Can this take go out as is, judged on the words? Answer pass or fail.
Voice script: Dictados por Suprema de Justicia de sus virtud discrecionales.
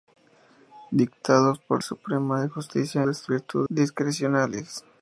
pass